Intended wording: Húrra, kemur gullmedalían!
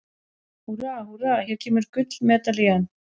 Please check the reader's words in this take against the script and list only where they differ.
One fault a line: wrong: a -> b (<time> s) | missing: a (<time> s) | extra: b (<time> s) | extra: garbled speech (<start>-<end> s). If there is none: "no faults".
extra: húrra hér (1.1 s)